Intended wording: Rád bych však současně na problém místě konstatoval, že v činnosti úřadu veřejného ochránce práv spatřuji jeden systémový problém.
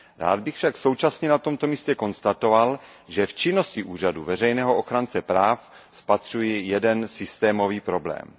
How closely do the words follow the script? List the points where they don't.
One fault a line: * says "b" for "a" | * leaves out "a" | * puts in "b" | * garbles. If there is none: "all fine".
* says "tomto" for "problém"